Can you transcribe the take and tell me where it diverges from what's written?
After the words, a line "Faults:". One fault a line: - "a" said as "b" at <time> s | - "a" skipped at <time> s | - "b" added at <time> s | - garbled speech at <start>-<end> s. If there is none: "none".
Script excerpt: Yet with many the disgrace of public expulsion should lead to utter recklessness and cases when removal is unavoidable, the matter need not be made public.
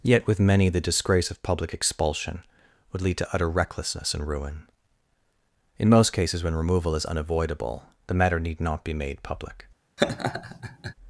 Yet with many the disgrace of public expulsion would lead to utter recklessness and ruin. In most cases when removal is unavoidable, the matter need not be made public.
Faults:
- "should" said as "would" at 2.9 s
- "ruin In most" added at 4.3 s